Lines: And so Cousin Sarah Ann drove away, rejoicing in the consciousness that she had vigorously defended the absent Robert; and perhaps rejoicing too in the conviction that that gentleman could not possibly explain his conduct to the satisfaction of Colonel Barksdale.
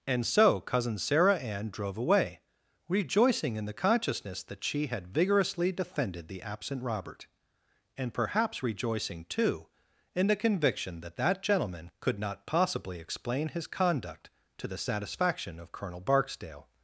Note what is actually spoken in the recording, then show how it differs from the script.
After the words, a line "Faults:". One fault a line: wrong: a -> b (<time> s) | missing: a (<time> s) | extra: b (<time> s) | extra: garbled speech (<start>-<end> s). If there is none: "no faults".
And so Cousin Sarah Ann drove away, rejoicing in the consciousness that she had vigorously defended the absent Robert; and perhaps rejoicing too in the conviction that that gentleman could not possibly explain his conduct to the satisfaction of Colonel Barksdale.
Faults:
no faults